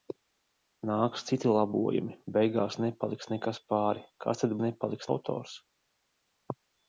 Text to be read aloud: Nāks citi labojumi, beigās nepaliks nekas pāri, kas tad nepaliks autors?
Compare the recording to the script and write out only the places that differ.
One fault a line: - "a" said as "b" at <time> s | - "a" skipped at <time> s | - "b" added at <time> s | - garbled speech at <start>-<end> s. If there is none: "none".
none